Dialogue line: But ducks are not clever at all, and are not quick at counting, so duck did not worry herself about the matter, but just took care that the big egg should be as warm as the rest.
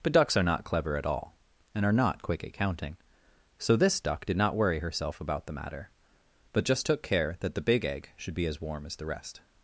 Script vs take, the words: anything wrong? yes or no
yes